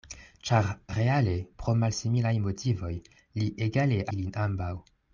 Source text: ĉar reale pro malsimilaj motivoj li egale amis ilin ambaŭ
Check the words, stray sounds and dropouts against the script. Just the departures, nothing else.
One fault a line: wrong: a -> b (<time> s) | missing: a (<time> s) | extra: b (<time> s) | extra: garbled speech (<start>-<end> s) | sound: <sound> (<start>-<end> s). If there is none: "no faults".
missing: amis (4.0 s)